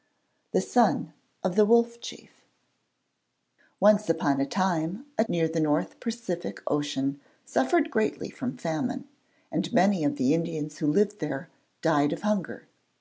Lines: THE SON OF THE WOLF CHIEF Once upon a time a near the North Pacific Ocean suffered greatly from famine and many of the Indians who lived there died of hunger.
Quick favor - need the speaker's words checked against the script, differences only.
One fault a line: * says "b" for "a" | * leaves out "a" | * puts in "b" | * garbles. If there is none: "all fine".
all fine